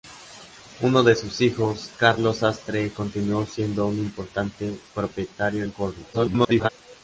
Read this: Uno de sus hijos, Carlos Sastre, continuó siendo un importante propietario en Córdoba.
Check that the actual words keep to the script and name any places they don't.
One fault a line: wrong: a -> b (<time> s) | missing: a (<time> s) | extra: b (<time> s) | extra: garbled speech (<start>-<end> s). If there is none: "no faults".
extra: garbled speech (6.1-6.7 s)